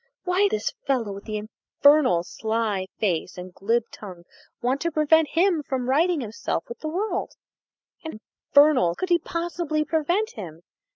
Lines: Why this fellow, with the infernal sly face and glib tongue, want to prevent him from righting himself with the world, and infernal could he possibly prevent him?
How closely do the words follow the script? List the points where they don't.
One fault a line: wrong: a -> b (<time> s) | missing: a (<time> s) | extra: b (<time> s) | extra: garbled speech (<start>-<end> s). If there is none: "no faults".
no faults